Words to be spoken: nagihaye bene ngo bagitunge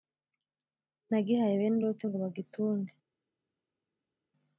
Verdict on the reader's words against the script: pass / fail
fail